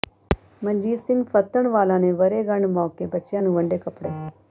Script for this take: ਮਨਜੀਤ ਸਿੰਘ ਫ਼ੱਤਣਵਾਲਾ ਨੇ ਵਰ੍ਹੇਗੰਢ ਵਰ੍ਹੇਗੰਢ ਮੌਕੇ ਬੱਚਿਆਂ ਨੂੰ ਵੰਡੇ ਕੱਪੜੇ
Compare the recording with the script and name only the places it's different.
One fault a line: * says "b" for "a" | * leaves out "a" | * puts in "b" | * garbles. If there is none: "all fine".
* leaves out "ਵਰ੍ਹੇਗੰਢ"